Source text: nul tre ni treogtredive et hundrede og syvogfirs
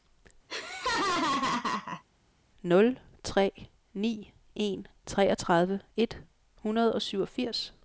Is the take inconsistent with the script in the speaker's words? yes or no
yes